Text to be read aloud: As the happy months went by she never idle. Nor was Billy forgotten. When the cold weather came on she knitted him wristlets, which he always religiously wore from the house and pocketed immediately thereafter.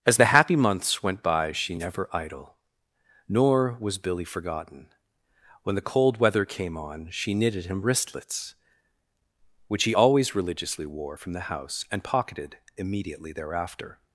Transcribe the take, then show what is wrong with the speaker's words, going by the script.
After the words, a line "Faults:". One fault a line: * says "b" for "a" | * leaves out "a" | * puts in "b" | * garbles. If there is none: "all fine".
As the happy months went by she never idle. Nor was Billy forgotten. When the cold weather came on she knitted him wristlets, which he always religiously wore from the house and pocketed immediately thereafter.
Faults:
all fine